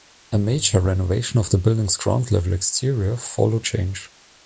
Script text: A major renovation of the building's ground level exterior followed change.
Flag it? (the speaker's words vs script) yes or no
no